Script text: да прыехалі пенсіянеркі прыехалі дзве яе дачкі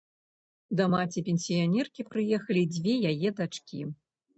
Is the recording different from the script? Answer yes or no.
yes